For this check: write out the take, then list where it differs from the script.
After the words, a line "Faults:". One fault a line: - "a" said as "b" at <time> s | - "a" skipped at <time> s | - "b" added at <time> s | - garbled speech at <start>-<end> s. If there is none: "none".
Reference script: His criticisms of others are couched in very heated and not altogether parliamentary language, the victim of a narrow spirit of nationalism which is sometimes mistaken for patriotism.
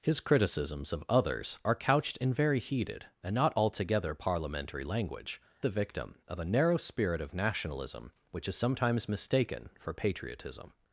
His criticisms of others are couched in very heated and not altogether parliamentary language, the victim of a narrow spirit of nationalism which is sometimes mistaken for patriotism.
Faults:
none